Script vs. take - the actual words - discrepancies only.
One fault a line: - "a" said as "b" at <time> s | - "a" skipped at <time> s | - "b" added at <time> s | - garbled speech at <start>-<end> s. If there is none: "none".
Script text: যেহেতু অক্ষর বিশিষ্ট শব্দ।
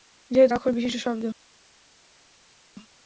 none